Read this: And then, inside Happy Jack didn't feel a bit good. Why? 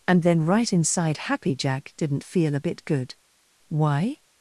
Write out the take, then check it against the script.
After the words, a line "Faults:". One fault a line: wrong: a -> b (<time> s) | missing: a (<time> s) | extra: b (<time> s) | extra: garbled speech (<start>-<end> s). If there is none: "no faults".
And then, right inside Happy Jack didn't feel a bit good. Why?
Faults:
extra: right (0.5 s)